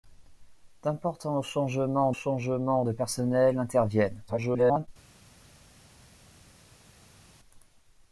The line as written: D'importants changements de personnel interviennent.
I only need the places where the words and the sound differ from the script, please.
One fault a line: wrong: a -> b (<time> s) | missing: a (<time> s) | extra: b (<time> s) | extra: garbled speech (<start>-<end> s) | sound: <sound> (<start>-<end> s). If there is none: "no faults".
extra: changements (2.1 s)
extra: garbled speech (4.3-4.9 s)